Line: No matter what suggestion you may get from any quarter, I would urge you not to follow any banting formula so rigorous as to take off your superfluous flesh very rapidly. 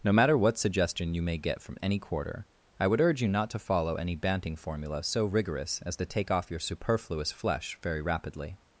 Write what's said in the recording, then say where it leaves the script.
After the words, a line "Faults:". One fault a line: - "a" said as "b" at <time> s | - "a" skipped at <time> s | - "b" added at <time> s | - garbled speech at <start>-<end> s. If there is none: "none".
No matter what suggestion you may get from any quarter, I would urge you not to follow any banting formula so rigorous as to take off your superfluous flesh very rapidly.
Faults:
none